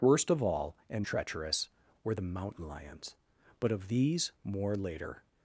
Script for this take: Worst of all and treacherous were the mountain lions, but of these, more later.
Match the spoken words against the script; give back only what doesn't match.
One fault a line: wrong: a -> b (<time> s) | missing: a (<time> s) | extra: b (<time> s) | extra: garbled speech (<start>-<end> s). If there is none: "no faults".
no faults